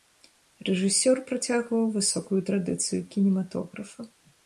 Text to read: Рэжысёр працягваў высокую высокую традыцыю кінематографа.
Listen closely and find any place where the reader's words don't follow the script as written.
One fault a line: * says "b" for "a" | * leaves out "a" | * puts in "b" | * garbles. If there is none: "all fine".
* leaves out "высокую"